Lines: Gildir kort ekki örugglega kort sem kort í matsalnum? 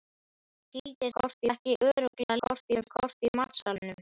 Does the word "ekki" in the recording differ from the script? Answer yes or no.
no